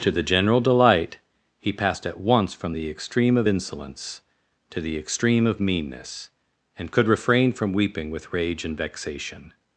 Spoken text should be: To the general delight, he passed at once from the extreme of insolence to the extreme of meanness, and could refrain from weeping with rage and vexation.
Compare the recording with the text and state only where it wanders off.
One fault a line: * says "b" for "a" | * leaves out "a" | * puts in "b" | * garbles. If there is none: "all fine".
all fine